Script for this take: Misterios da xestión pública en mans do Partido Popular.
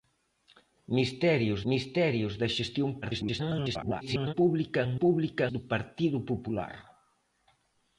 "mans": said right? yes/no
no